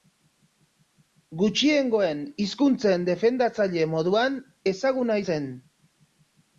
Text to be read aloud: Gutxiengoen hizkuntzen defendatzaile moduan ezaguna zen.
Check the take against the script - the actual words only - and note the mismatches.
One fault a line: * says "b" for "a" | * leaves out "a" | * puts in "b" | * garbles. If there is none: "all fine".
all fine